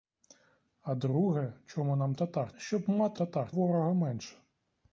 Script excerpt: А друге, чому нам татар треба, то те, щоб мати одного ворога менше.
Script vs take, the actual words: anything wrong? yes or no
yes